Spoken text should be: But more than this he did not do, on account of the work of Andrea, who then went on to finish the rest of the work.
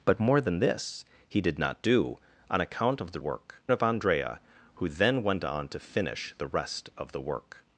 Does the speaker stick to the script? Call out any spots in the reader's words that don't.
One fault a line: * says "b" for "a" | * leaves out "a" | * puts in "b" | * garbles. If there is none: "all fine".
all fine